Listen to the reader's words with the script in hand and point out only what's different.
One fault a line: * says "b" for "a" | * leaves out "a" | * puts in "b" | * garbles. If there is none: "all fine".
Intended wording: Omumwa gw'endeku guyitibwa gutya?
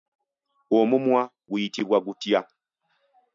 * leaves out "gw'endeku"